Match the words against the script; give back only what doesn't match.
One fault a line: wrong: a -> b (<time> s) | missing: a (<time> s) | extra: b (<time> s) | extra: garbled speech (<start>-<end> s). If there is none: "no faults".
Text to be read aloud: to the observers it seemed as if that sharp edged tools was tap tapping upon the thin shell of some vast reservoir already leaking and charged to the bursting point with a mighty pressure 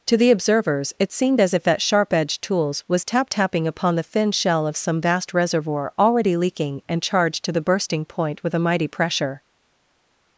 no faults